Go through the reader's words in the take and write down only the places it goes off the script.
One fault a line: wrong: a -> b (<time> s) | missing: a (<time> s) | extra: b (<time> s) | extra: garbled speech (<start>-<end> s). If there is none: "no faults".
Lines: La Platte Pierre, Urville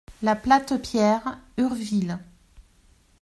no faults